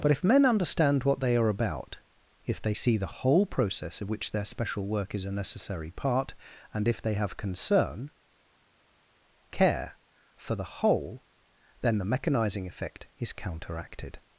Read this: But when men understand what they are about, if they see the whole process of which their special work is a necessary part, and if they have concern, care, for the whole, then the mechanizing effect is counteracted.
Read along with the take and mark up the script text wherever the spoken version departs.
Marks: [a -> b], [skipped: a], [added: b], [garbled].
But [when -> if] men understand what they are about, if they see the whole process of which their special work is a necessary part, and if they have concern, care, for the whole, then the mechanizing effect is counteracted.